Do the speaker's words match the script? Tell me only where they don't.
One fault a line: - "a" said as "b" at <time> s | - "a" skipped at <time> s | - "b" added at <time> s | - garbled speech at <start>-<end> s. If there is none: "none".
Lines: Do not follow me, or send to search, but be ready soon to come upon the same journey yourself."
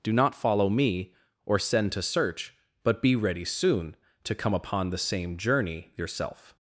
none